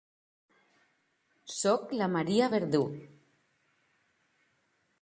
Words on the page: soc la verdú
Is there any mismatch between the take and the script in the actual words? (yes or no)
yes